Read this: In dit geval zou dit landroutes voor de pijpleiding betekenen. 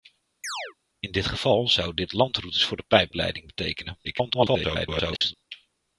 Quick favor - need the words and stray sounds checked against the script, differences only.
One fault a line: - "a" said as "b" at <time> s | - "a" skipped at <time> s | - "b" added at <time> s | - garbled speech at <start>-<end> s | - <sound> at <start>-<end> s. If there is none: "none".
- chirp at 0.4-0.7 s
- garbled speech at 4.0-5.3 s